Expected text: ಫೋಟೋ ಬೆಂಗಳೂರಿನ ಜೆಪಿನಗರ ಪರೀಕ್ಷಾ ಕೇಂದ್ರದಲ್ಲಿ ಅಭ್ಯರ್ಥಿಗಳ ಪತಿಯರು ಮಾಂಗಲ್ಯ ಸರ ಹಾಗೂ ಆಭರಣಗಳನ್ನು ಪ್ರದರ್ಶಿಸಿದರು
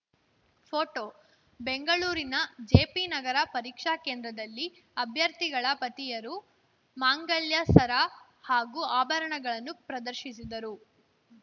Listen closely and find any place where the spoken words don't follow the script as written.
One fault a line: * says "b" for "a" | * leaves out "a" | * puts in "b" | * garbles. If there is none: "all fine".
all fine